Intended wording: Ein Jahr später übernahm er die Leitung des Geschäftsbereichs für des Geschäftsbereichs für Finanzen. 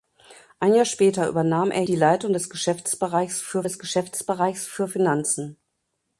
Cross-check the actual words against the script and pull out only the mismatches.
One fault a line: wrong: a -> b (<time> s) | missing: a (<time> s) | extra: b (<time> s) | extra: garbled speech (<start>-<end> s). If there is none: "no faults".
no faults